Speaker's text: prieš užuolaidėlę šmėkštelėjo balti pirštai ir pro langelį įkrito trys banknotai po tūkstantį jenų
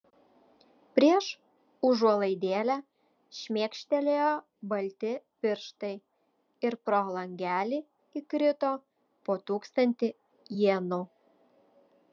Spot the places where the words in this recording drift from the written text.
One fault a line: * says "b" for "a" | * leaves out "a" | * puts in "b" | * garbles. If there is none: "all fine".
* leaves out "trys banknotai"